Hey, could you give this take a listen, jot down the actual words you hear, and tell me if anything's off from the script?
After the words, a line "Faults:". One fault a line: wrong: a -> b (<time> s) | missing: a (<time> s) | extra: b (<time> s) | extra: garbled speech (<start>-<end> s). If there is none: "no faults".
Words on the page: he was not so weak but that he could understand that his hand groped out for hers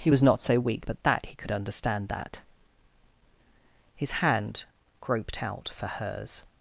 he was not so weak but that he could understand that his hand groped out for hers
Faults:
no faults